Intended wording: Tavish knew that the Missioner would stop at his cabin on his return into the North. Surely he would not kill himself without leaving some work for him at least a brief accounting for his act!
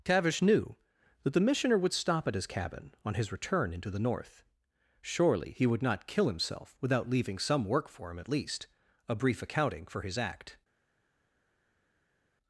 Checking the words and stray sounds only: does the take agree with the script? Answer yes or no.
yes